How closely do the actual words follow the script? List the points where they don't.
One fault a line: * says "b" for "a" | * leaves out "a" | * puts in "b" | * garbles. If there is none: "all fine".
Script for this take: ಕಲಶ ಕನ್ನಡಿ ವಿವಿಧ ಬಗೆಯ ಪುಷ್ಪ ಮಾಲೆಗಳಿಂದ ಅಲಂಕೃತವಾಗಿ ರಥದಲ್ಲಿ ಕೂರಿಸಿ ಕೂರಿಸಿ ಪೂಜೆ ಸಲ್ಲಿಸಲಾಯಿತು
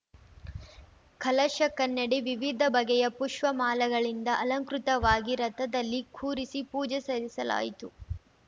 * leaves out "ಕೂರಿಸಿ"